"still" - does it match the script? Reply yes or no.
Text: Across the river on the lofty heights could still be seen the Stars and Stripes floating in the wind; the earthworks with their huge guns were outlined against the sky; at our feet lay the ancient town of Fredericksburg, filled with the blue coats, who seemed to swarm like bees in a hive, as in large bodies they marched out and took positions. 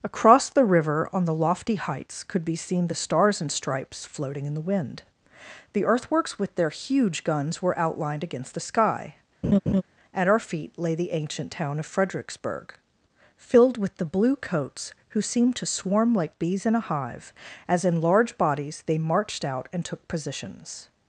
no